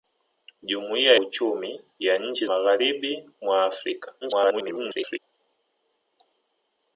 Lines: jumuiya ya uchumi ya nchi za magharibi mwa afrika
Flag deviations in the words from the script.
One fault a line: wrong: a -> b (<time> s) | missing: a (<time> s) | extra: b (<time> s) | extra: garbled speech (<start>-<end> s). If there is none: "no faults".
missing: ya (1.1 s)
missing: za (2.5 s)
extra: garbled speech (4.2-5.2 s)